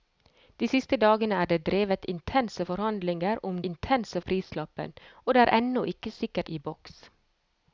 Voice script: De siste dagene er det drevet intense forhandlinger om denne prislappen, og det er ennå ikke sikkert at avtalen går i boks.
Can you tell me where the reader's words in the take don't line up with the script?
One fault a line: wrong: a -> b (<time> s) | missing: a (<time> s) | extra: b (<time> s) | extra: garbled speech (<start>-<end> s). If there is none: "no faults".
wrong: denne -> intense (3.7 s)
missing: at avtalen går (6.5 s)